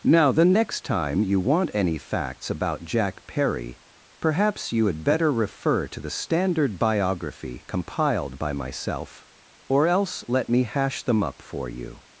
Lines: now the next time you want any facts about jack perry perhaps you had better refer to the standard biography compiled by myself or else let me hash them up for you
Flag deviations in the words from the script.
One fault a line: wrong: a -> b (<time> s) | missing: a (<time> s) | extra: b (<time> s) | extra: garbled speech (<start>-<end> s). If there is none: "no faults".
no faults